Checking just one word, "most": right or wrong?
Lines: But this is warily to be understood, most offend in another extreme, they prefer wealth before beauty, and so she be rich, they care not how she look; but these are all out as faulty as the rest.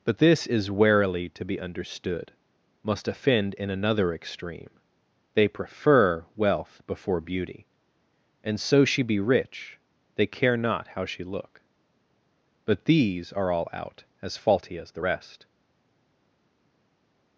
wrong